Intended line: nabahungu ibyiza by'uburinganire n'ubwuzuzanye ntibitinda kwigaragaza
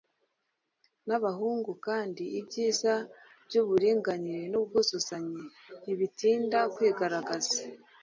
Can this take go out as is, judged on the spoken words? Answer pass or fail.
fail